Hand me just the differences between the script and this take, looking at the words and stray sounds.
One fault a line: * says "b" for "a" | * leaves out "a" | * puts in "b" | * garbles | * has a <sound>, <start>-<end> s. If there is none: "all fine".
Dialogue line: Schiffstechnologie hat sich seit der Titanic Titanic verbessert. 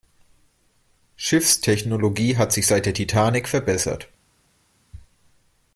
* leaves out "Titanic"